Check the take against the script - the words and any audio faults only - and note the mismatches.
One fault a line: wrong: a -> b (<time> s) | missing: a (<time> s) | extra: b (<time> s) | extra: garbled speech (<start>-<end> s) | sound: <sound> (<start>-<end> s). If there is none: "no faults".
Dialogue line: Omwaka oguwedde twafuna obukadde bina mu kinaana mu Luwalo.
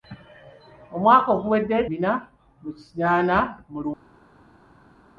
missing: twafuna obukadde (1.8 s)